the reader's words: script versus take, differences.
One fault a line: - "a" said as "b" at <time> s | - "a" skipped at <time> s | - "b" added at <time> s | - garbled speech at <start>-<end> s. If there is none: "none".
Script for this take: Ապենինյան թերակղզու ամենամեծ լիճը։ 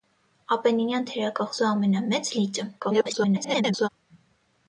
- garbled speech at 2.8-3.9 s